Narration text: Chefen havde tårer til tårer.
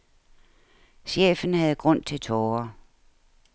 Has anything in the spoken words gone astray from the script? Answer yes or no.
yes